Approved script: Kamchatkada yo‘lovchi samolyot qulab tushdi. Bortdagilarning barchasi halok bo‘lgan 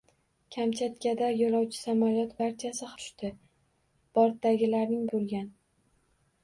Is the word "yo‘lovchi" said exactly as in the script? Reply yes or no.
yes